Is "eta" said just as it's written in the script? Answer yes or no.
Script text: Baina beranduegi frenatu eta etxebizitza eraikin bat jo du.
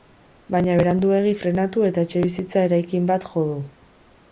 yes